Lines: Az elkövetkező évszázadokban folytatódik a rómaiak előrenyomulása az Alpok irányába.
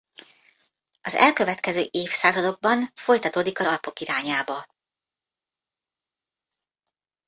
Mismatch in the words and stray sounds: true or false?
true